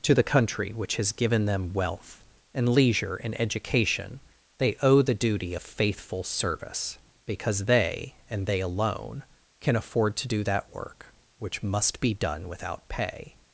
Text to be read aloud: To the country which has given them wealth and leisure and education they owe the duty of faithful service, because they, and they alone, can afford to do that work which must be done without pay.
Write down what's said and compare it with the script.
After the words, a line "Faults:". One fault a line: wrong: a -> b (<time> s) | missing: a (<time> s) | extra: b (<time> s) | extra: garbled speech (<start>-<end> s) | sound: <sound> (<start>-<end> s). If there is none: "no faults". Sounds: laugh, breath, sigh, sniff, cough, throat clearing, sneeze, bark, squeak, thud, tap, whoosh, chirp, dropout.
To the country which has given them wealth and leisure and education they owe the duty of faithful service, because they, and they alone, can afford to do that work which must be done without pay.
Faults:
no faults